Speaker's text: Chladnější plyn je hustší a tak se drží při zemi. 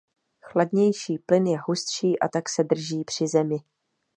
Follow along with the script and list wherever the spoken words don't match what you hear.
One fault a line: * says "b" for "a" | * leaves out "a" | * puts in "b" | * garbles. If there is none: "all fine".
all fine